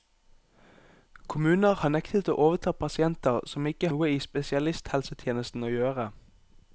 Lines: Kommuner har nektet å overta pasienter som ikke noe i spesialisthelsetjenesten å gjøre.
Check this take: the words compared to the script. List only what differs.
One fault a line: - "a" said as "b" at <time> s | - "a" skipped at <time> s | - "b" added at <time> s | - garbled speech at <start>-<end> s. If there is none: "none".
none